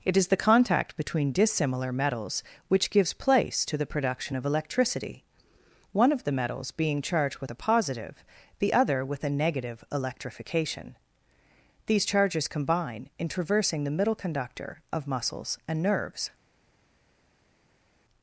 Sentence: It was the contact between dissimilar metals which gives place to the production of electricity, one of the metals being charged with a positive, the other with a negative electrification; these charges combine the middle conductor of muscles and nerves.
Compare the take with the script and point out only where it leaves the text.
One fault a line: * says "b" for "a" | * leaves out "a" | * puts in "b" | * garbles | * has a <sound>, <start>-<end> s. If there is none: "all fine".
* says "is" for "was"
* puts in "in traversing"